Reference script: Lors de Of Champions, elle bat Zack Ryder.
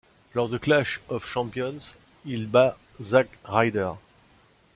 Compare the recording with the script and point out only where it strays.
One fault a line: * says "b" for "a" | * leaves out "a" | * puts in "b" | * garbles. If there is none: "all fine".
* puts in "Clash"
* says "il" for "elle"